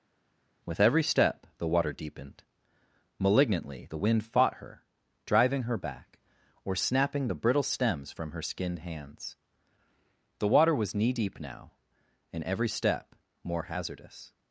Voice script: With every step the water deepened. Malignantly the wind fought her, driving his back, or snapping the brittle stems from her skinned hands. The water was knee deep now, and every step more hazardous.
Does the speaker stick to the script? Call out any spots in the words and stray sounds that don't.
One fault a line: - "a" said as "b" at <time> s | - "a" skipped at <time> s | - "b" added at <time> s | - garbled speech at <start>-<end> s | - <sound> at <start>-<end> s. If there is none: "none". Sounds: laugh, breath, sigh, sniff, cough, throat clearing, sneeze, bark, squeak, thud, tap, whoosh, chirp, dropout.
- "his" said as "her" at 5.6 s